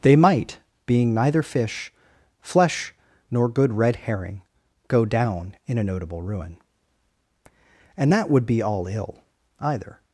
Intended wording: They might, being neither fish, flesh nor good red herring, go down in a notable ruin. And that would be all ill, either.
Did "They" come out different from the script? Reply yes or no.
no